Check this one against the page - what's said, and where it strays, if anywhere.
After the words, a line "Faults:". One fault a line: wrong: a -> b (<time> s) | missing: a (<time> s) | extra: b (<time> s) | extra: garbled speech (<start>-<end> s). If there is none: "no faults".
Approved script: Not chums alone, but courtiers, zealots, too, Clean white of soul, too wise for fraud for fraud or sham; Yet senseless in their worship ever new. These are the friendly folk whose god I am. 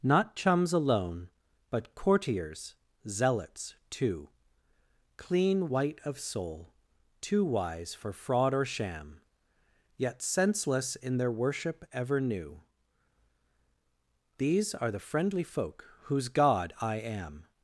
Not chums alone, but courtiers, zealots, too, Clean white of soul, too wise for fraud or sham; Yet senseless in their worship ever new. These are the friendly folk whose god I am.
Faults:
missing: for fraud (8.5 s)